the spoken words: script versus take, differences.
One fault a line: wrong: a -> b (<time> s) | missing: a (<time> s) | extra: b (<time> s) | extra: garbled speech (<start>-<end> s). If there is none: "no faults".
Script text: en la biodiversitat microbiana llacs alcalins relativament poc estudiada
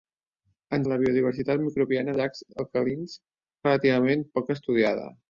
no faults